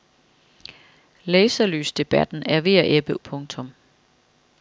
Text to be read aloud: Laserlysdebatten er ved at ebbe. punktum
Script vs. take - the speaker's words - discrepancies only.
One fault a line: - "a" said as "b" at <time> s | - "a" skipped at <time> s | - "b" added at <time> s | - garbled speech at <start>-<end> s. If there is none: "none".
none